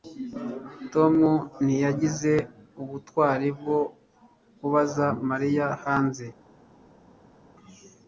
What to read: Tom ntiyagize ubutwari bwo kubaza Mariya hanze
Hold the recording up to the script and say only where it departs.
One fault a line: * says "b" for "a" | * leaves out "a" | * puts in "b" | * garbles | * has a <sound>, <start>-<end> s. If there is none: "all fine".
all fine